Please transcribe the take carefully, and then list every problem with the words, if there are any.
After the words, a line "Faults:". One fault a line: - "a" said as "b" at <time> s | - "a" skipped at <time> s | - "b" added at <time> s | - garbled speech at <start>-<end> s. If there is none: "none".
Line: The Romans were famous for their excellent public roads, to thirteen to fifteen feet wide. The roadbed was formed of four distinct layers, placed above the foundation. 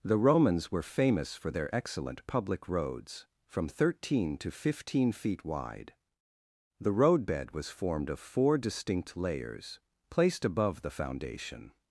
The Romans were famous for their excellent public roads, from thirteen to fifteen feet wide. The roadbed was formed of four distinct layers, placed above the foundation.
Faults:
- "to" said as "from" at 3.5 s